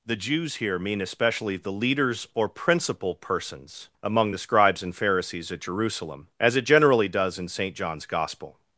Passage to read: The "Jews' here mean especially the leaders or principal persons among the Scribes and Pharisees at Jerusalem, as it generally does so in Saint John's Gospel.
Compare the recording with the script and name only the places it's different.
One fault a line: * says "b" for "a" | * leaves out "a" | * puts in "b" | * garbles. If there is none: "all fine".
* leaves out "so"